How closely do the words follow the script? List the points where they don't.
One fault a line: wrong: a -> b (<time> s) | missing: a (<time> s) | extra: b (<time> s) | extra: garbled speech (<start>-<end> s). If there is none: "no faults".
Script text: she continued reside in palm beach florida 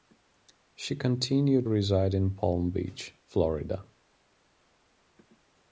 no faults